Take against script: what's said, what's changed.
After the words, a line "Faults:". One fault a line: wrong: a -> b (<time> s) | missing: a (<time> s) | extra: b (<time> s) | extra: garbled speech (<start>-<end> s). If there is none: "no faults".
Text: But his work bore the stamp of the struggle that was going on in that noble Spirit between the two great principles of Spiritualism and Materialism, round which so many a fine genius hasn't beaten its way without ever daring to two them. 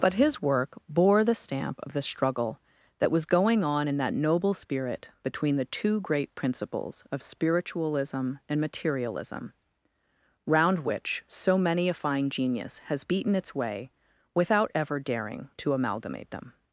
But his work bore the stamp of the struggle that was going on in that noble Spirit between the two great principles of Spiritualism and Materialism, round which so many a fine genius has beaten its way without ever daring to amalgamate them.
Faults:
wrong: hasn't -> has (12.8 s)
wrong: two -> amalgamate (15.7 s)